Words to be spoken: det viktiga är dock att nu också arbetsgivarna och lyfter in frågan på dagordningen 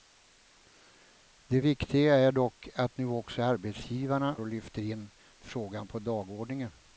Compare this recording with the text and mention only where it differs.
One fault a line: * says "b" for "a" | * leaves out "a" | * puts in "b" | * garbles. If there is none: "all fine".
all fine